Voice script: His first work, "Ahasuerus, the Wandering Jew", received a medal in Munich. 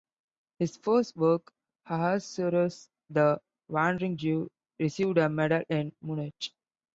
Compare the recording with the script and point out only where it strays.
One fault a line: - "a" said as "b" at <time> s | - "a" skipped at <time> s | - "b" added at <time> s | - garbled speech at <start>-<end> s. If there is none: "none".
none